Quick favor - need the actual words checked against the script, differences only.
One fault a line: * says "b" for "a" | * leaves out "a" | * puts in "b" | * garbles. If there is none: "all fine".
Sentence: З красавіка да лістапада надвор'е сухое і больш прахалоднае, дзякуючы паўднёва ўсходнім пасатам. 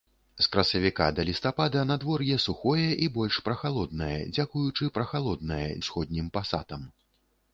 * says "прахалоднае" for "паўднёва"